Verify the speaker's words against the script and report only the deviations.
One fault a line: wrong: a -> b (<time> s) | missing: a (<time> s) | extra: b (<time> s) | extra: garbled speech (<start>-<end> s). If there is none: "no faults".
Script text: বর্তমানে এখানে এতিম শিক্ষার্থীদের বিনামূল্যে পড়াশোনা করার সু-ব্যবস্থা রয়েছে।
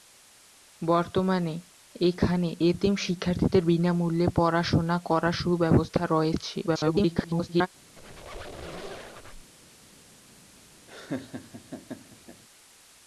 extra: garbled speech (6.7-7.7 s)